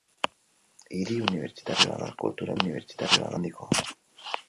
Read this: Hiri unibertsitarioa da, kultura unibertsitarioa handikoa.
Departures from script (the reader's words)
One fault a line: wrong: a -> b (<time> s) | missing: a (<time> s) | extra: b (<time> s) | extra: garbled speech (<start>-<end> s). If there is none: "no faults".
no faults